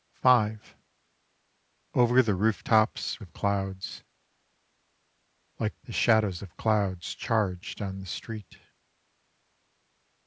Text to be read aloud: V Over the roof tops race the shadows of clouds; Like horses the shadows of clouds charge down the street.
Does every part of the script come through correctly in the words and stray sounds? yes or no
no